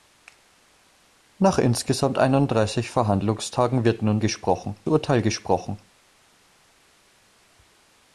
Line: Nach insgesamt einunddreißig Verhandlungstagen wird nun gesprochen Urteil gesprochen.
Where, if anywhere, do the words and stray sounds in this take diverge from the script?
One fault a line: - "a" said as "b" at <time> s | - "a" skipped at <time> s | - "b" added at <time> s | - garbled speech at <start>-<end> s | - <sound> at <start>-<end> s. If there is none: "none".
none